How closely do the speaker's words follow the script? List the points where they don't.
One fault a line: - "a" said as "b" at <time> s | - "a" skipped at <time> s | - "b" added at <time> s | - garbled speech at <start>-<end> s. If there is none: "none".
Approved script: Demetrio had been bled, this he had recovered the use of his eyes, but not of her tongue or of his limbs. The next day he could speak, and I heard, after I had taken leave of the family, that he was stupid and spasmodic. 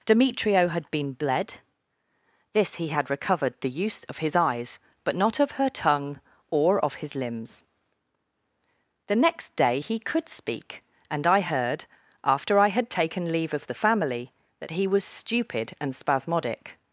none